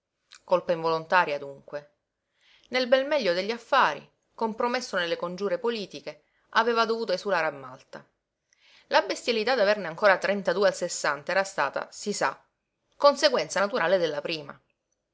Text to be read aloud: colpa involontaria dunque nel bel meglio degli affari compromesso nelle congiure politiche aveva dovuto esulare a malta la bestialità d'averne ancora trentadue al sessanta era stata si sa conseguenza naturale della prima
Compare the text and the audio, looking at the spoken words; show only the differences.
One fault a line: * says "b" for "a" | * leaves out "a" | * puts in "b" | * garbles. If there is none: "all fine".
all fine